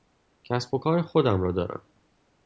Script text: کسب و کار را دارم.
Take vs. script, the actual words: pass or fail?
fail